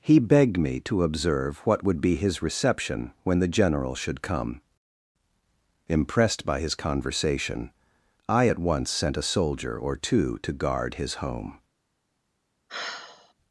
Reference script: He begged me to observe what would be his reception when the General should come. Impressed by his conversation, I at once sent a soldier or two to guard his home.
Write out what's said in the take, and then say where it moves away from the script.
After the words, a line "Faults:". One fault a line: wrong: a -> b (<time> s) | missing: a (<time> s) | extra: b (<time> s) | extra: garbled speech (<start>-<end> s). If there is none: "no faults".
He begged me to observe what would be his reception when the General should come. Impressed by his conversation, I at once sent a soldier or two to guard his home.
Faults:
no faults